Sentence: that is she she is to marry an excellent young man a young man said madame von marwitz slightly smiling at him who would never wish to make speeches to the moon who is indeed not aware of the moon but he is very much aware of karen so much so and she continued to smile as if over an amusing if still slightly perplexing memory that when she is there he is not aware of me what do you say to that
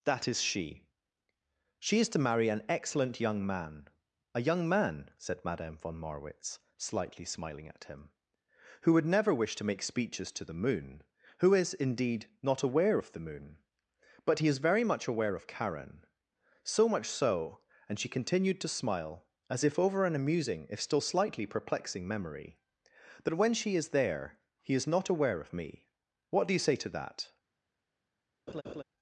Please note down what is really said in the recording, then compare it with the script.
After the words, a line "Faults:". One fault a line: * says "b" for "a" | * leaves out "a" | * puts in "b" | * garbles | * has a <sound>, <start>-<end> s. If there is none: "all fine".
that is she she is to marry an excellent young man a young man said madame von marwitz slightly smiling at him who would never wish to make speeches to the moon who is indeed not aware of the moon but he is very much aware of karen so much so and she continued to smile as if over an amusing if still slightly perplexing memory that when she is there he is not aware of me what do you say to that
Faults:
* has a laugh, 28.5-28.8 s